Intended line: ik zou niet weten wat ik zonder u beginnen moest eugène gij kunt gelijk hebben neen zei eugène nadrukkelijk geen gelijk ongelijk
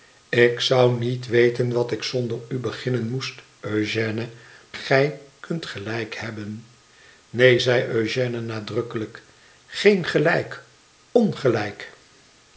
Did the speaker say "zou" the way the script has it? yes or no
yes